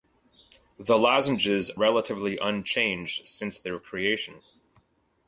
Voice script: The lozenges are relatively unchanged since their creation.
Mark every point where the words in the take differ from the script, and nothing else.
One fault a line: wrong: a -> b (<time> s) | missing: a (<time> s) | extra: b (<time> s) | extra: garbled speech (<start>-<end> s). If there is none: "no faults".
missing: are (1.7 s)